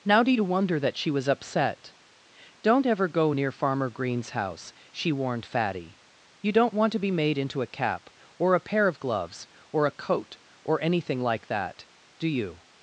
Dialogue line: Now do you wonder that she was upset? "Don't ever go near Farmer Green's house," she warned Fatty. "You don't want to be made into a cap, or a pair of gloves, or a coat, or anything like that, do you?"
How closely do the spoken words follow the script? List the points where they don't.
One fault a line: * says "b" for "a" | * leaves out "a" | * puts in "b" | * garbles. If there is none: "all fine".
all fine